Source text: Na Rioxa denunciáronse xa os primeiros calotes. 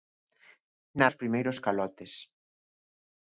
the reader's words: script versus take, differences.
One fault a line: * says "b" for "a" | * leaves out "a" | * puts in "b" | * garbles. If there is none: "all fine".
* leaves out "Rioxa denunciáronse xa"